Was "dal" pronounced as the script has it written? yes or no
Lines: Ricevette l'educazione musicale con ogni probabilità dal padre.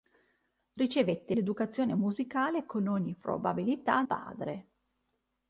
no